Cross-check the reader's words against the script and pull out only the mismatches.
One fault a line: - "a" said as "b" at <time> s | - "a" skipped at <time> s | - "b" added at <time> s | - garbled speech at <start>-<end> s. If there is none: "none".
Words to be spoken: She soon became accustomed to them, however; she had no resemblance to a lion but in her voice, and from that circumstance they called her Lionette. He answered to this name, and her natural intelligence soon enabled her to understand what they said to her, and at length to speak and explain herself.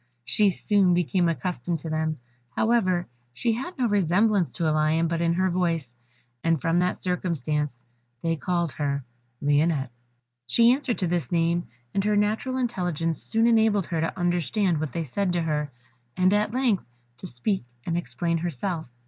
- "He" said as "She" at 10.5 s